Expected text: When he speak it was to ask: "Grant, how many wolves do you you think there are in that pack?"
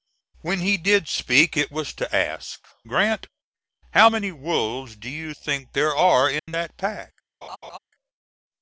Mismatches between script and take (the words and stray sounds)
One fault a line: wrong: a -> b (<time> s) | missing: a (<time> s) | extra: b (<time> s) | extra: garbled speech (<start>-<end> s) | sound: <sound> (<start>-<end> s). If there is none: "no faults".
extra: did (0.8 s)
missing: you (5.3 s)
sound: dropout (6.4-6.5 s)
sound: laugh (7.4-7.8 s)